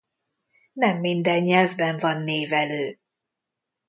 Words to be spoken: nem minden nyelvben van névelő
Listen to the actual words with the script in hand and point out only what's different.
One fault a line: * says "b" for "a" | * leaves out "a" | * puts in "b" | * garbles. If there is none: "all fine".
all fine